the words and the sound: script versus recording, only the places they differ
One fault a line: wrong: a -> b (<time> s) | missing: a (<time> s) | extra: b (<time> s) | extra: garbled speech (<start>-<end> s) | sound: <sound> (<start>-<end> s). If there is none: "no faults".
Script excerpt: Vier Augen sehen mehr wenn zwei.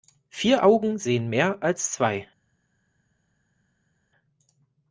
wrong: wenn -> als (1.6 s)